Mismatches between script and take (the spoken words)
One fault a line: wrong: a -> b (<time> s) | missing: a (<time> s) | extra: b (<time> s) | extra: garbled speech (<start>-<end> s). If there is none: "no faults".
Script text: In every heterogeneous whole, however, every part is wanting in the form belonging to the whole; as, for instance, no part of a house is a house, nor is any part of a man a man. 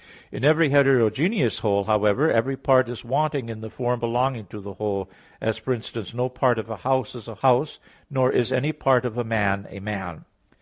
no faults